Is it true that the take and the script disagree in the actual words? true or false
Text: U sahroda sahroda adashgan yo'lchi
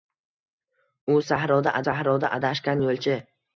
false